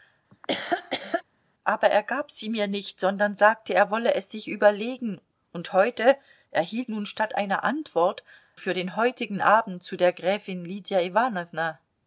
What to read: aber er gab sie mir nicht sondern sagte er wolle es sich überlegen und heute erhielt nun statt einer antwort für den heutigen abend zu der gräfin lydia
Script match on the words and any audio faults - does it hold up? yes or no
no